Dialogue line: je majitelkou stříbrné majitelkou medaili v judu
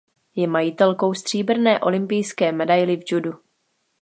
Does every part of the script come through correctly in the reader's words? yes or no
no